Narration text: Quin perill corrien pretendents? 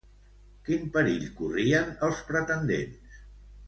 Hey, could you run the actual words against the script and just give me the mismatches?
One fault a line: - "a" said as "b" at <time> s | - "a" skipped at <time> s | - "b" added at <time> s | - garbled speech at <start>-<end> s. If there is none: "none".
- "els" added at 2.1 s